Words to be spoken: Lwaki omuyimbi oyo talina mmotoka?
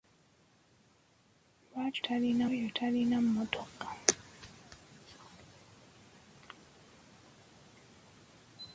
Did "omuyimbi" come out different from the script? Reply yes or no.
yes